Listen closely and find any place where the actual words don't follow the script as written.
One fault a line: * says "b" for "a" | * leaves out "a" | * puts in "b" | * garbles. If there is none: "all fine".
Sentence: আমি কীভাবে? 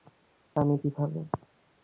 all fine